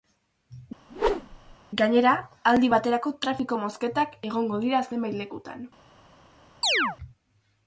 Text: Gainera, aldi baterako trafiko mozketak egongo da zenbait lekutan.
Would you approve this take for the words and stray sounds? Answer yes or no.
no